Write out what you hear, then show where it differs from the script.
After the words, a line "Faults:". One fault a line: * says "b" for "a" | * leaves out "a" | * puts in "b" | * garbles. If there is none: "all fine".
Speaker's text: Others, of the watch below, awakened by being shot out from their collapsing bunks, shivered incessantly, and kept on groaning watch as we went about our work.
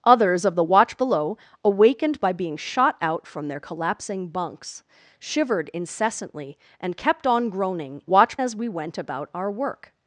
Others, of the watch below, awakened by being shot out from their collapsing bunks, shivered incessantly, and kept on groaning watch as we went about our work.
Faults:
all fine